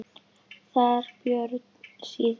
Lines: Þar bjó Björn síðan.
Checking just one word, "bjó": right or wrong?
wrong